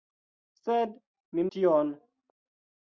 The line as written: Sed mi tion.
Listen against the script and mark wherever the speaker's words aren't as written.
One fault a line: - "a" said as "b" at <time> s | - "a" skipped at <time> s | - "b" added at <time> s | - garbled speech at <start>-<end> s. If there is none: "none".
none